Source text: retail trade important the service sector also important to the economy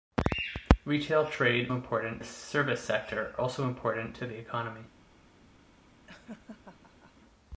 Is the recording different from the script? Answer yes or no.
no